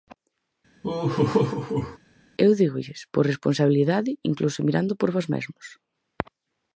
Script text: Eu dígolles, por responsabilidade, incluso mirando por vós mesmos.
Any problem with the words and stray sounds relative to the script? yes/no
yes